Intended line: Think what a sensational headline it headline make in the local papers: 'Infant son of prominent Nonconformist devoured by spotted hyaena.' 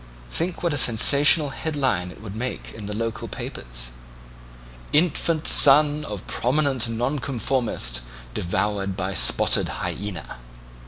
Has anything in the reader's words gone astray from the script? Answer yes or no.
yes